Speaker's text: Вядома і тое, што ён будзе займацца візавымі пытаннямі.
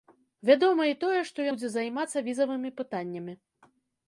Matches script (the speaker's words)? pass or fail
fail